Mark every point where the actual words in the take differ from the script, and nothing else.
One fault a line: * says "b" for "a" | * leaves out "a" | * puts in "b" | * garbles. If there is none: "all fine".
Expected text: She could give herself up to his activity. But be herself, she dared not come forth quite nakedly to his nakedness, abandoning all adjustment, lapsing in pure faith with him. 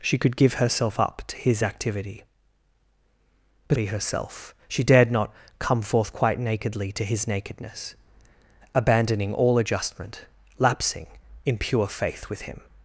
all fine